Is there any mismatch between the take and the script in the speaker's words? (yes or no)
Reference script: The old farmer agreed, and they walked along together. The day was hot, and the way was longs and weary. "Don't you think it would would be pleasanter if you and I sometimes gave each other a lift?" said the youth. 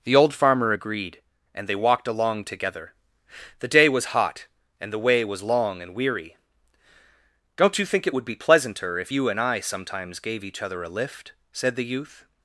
yes